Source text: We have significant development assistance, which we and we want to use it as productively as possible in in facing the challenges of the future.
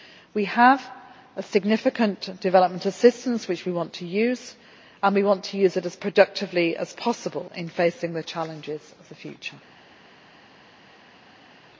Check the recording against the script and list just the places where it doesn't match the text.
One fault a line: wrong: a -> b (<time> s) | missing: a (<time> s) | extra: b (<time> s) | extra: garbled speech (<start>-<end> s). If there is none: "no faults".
extra: want to use (3.7 s)
missing: in (7.7 s)